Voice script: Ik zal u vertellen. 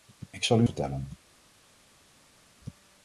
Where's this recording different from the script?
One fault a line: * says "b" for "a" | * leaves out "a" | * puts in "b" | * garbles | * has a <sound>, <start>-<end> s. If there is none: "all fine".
all fine